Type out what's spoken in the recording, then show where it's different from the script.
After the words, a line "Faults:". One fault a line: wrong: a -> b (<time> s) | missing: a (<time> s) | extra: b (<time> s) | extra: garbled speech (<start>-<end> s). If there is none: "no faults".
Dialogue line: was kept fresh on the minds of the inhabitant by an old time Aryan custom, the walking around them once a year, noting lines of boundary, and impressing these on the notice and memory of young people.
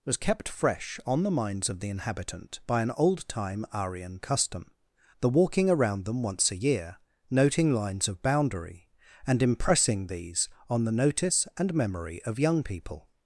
was kept fresh on the minds of the inhabitant by an old time Aryan custom, the walking around them once a year, noting lines of boundary, and impressing these on the notice and memory of young people.
Faults:
no faults